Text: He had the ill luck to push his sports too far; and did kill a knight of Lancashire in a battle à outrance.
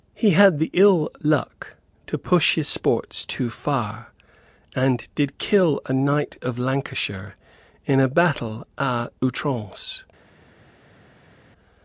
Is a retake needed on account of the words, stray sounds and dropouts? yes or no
no